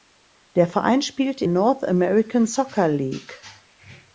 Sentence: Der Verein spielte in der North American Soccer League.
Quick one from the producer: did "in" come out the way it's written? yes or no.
no